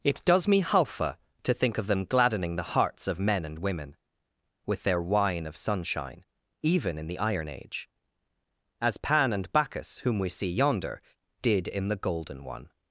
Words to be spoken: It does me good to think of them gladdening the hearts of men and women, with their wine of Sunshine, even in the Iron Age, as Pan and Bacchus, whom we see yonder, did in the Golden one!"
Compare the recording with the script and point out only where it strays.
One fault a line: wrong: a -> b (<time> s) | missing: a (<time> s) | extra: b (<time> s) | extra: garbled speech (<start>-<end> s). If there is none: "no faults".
wrong: good -> halfa (0.6 s)